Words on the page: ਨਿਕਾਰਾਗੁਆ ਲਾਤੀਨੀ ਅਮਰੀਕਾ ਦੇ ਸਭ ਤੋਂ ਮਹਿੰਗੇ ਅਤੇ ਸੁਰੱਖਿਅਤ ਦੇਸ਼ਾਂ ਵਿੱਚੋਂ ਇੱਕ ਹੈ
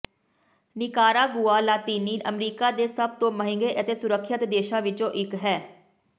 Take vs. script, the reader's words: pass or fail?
pass